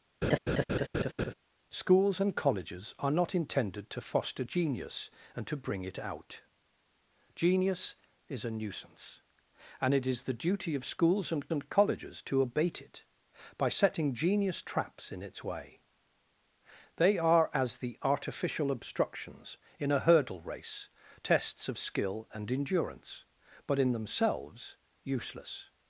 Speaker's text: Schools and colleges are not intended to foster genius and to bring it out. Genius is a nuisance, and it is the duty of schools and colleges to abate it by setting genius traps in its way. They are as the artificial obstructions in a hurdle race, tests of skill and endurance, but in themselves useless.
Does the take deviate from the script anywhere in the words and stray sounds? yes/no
yes